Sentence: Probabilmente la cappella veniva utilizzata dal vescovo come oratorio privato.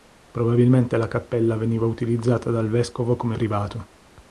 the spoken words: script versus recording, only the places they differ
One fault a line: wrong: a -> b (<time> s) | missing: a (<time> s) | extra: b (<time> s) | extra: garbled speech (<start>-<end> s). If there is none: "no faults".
missing: oratorio (3.4 s)